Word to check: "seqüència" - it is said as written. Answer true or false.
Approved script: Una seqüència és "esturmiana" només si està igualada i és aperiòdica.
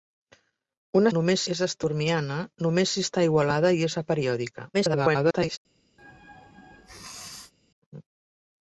false